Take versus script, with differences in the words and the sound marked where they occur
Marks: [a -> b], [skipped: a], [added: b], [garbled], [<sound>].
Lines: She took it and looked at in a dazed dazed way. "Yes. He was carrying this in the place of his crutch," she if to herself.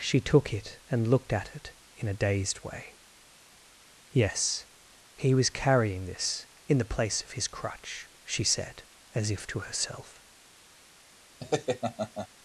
She took it and looked at [added: it] in a dazed [skipped: dazed] way. "Yes. He was carrying this in the place of his crutch," she [added: said as] if to herself. [laugh]